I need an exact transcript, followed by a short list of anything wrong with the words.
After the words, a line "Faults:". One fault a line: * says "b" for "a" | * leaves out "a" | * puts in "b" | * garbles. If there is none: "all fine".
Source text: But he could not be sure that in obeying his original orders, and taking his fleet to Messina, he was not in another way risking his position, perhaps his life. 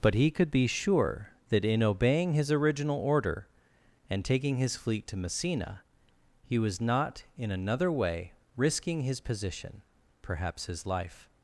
But he could be sure that in obeying his original order, and taking his fleet to Messina, he was not in another way risking his position, perhaps his life.
Faults:
* leaves out "not"
* says "order" for "orders"